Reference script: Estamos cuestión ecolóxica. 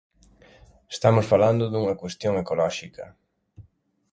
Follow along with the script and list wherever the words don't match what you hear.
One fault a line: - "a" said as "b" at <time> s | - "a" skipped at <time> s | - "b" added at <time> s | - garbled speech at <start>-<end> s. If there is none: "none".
- "falando dunha" added at 1.3 s